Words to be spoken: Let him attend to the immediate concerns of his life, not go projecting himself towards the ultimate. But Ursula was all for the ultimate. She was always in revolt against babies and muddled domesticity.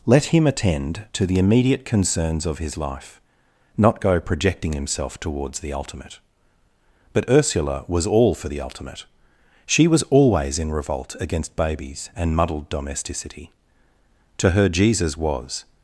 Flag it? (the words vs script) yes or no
yes